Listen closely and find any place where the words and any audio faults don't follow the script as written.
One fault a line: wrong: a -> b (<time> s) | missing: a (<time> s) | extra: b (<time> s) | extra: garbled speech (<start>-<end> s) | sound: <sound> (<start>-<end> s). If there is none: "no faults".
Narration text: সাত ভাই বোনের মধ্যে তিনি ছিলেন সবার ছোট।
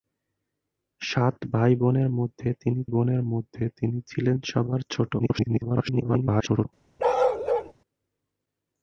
extra: বোনের মধ্যে তিনি (2.9 s)
extra: garbled speech (5.2-6.7 s)
sound: bark (7.0-7.7 s)